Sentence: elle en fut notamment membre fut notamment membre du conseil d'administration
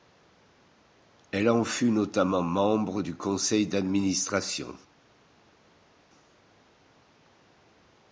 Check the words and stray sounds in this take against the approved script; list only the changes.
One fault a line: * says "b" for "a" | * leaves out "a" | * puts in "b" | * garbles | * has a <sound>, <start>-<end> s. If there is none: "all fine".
* leaves out "fut notamment membre"